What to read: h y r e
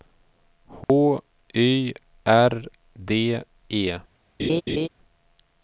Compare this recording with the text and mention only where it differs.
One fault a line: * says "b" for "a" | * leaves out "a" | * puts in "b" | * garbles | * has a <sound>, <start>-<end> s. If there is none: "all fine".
* has a dropout, 0.8-0.9 s
* puts in "d"
* has a laugh, 4.4-4.9 s